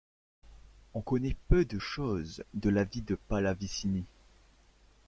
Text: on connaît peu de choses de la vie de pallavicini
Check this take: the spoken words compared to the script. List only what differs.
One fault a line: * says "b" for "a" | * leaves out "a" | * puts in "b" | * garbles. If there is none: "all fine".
all fine